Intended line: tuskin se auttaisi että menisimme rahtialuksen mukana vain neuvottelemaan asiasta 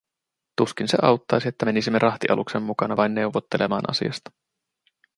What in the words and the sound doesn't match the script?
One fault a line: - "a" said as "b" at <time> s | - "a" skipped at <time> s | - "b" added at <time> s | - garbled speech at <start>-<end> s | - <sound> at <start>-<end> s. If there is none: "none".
none